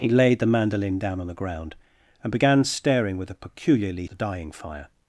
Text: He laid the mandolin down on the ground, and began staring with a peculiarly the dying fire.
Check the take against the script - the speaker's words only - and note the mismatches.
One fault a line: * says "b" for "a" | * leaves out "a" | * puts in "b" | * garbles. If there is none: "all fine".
all fine